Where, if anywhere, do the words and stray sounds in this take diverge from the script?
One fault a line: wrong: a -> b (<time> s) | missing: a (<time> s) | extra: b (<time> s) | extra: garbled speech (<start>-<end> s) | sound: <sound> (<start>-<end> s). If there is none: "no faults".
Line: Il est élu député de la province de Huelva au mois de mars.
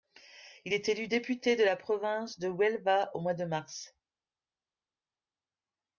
no faults